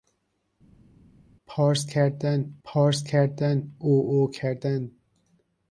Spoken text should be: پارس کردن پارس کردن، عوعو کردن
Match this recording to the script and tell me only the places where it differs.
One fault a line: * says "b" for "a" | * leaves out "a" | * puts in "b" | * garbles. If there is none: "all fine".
all fine